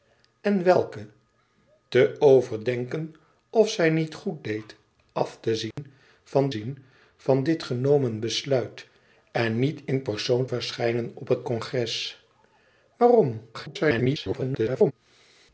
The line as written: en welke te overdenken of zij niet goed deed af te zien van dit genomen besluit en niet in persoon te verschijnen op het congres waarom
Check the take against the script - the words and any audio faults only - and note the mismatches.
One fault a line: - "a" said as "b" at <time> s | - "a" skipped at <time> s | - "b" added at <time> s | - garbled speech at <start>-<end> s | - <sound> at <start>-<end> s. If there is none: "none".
- dropout at 5.7-5.8 s
- "zien van" added at 6.5 s
- "te" skipped at 10.5 s
- garbled speech at 13.5-14.9 s